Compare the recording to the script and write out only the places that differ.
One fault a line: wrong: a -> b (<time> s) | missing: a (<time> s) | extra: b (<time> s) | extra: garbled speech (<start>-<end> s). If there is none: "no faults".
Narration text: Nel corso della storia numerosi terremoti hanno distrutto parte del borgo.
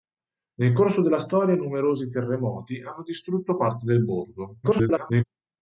extra: garbled speech (4.6-5.2 s)